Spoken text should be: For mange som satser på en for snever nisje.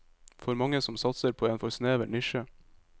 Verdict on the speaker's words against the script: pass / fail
pass